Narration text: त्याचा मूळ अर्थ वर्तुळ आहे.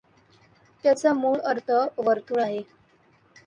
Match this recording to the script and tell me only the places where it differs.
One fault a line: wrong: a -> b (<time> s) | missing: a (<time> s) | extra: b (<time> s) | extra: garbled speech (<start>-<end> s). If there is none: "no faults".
no faults